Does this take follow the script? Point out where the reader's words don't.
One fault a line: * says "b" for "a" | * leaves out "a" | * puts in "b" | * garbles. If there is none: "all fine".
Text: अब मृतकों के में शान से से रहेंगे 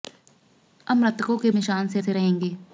all fine